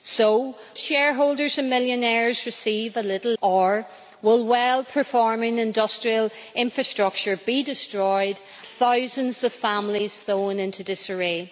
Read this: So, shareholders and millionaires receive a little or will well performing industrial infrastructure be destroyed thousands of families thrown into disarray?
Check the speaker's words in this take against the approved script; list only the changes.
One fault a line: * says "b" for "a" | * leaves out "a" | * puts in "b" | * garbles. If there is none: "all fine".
all fine